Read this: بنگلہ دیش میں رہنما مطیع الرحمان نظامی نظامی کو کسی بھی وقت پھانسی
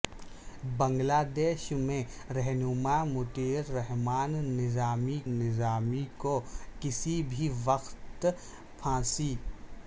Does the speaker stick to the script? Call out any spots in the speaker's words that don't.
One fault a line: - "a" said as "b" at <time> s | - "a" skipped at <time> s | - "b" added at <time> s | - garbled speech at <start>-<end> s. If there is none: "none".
none